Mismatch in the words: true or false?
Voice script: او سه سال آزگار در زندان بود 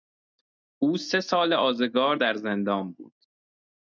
false